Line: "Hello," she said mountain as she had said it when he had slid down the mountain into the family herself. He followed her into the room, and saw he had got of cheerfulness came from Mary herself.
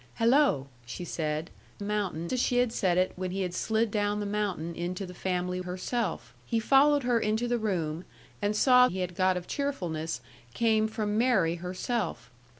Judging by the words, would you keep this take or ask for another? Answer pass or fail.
pass